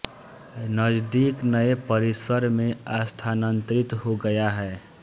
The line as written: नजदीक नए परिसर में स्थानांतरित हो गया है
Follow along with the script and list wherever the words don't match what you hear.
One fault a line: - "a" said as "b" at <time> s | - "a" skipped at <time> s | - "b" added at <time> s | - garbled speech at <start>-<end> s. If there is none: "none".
none